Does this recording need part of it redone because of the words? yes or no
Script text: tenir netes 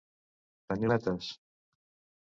no